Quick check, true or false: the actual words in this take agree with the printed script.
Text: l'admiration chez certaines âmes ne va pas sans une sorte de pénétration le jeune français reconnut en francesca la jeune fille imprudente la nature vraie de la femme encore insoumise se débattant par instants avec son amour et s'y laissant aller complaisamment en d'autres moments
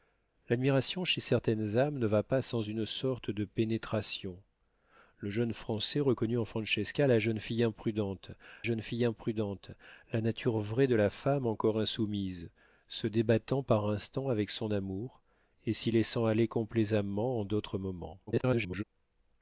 false